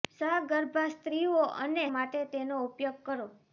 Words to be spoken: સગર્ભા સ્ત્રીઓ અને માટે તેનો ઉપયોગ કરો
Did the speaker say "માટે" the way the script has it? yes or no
yes